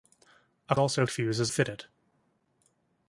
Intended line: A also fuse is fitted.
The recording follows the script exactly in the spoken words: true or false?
true